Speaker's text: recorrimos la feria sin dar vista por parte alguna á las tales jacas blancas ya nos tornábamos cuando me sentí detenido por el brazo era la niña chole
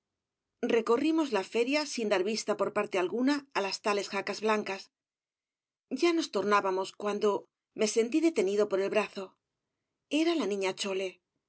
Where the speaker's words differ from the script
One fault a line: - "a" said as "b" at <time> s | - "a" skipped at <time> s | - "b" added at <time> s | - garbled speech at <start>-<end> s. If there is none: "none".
none